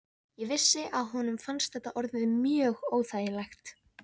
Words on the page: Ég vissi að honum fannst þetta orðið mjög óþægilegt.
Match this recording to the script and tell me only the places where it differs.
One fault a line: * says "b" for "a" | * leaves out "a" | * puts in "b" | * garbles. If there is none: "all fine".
all fine